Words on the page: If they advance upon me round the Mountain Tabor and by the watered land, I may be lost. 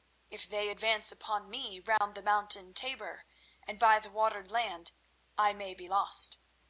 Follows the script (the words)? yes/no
yes